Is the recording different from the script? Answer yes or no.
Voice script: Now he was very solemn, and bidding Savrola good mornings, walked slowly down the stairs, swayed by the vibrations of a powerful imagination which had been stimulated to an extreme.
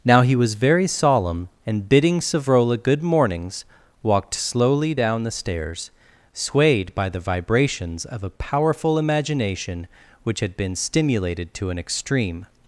no